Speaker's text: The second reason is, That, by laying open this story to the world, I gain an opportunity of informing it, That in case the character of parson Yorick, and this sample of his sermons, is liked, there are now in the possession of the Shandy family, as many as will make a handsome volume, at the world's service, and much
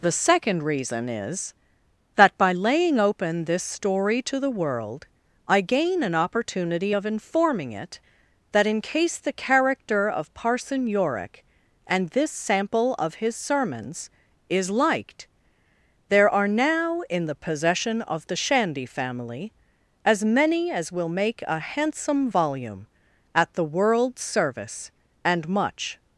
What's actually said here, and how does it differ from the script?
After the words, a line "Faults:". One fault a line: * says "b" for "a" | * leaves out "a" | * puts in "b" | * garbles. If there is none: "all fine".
The second reason is, That, by laying open this story to the world, I gain an opportunity of informing it, That in case the character of parson Yorick, and this sample of his sermons, is liked, there are now in the possession of the Shandy family, as many as will make a handsome volume, at the world's service, and much
Faults:
all fine